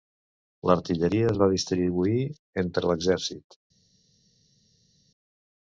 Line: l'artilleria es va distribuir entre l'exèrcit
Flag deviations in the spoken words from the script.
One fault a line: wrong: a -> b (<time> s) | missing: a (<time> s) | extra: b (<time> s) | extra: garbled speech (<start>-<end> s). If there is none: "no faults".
no faults